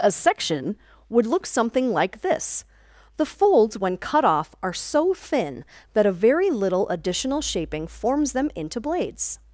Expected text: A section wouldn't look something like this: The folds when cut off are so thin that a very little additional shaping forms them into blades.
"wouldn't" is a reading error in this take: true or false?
true